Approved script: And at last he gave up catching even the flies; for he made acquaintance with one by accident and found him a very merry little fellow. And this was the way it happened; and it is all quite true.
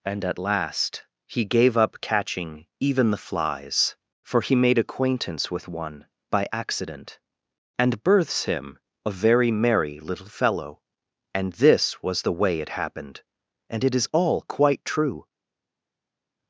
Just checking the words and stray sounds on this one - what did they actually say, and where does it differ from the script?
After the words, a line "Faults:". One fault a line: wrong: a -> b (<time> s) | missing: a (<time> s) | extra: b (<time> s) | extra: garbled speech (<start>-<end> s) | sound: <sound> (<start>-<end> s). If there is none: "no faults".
And at last he gave up catching even the flies; for he made acquaintance with one by accident and births him a very merry little fellow. And this was the way it happened; and it is all quite true.
Faults:
wrong: found -> births (8.0 s)